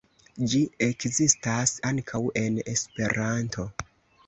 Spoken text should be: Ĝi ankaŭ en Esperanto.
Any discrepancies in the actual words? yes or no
yes